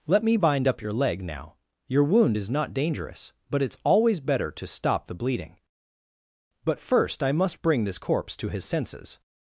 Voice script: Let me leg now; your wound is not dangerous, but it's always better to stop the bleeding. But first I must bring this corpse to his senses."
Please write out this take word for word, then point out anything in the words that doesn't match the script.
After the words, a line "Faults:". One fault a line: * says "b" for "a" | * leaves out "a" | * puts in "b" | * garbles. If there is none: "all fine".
Let me bind up your leg now; your wound is not dangerous, but it's always better to stop the bleeding. But first I must bring this corpse to his senses."
Faults:
* puts in "bind up your"